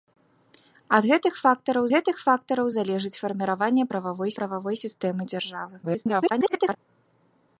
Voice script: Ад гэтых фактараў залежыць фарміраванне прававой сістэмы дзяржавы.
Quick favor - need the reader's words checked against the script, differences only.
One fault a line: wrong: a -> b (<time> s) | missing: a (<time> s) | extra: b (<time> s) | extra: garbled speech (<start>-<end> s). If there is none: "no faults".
extra: гэтых фактараў (1.9 s)
extra: прававой (4.4 s)
extra: garbled speech (5.8-6.8 s)